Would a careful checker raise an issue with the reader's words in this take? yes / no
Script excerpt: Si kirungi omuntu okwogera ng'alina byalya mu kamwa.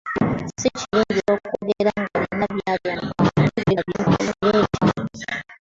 yes